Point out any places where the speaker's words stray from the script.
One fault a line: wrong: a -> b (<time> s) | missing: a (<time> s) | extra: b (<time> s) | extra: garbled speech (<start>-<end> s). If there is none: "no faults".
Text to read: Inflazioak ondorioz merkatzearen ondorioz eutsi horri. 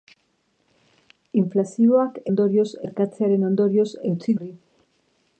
no faults